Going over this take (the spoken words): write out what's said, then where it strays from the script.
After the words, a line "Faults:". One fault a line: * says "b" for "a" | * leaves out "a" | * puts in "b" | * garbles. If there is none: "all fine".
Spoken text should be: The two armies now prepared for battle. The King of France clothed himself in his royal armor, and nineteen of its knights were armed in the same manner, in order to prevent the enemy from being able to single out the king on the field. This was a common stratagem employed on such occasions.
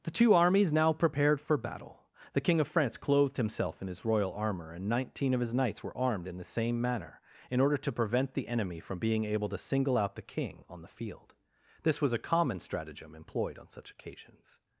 The two armies now prepared for battle. The King of France clothed himself in his royal armor, and nineteen of his knights were armed in the same manner, in order to prevent the enemy from being able to single out the king on the field. This was a common stratagem employed on such occasions.
Faults:
* says "his" for "its"